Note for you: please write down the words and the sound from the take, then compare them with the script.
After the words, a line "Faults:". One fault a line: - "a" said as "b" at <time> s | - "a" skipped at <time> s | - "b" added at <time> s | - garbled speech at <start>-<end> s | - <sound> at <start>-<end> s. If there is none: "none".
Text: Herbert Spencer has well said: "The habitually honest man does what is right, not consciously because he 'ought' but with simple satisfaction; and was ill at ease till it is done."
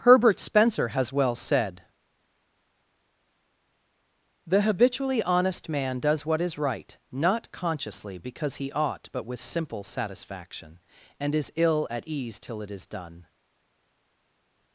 Herbert Spencer has well said: "The habitually honest man does what is right, not consciously because he 'ought' but with simple satisfaction; and is ill at ease till it is done."
Faults:
- "was" said as "is" at 11.4 s